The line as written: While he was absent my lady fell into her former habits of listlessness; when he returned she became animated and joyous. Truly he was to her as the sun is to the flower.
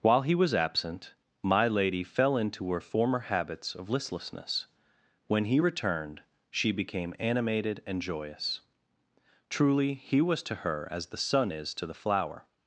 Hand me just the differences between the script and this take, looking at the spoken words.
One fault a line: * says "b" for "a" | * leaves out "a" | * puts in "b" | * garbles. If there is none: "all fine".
all fine